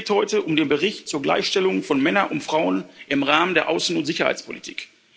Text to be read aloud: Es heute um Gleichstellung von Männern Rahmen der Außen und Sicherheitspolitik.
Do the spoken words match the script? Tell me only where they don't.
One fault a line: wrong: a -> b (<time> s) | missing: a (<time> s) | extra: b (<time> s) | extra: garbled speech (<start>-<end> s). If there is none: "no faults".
extra: geht (0.1 s)
extra: den Bericht zur (0.6 s)
extra: und Frauen im (2.3 s)